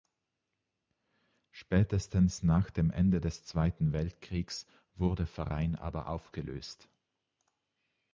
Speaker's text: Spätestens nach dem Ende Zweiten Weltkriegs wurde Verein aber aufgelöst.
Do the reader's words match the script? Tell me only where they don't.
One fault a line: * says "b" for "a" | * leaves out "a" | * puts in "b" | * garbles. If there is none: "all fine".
* puts in "des"